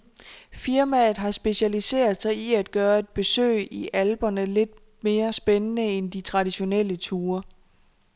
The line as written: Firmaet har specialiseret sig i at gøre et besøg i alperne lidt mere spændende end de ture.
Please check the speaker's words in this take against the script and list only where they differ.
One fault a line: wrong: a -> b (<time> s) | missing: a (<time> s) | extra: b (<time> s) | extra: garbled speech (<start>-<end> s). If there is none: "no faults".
extra: traditionelle (6.2 s)